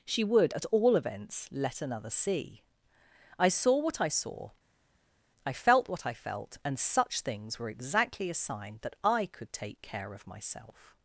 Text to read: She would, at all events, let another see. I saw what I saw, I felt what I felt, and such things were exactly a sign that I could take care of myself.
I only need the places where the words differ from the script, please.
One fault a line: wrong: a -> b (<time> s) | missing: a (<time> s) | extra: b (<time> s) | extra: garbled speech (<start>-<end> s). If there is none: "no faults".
no faults